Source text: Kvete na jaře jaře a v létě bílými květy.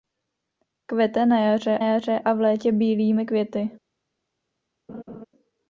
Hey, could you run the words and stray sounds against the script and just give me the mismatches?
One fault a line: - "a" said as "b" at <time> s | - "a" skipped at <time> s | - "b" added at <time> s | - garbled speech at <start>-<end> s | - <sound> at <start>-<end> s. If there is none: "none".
- laugh at 4.9-5.3 s